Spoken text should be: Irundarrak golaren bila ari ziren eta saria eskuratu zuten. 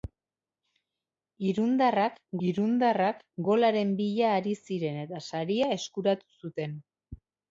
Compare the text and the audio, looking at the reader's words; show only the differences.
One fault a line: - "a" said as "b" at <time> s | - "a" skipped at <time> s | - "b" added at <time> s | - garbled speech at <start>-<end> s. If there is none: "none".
- "irundarrak" added at 2.5 s